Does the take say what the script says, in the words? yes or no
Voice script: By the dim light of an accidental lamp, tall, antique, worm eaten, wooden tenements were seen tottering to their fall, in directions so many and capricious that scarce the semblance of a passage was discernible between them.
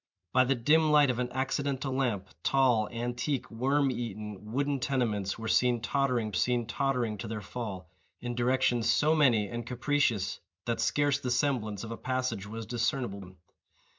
no